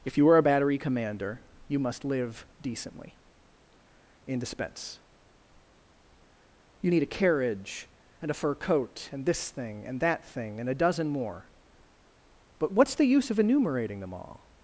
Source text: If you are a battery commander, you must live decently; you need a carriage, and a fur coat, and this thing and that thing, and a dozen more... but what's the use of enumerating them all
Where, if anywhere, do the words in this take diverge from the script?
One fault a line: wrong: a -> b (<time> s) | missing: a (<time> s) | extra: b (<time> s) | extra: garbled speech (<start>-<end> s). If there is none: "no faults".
extra: in dispense (4.3 s)